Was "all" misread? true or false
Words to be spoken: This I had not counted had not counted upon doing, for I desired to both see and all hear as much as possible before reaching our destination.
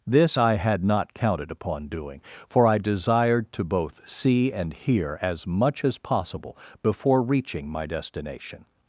true